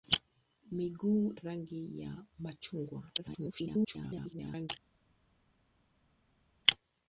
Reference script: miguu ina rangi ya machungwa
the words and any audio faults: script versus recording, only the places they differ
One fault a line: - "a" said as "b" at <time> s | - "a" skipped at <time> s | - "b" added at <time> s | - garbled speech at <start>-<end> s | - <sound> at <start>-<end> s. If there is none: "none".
- "ina" skipped at 1.3 s
- garbled speech at 3.2-4.7 s